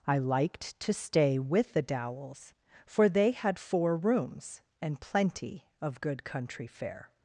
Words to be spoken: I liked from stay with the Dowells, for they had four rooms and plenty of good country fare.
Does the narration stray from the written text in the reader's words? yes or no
yes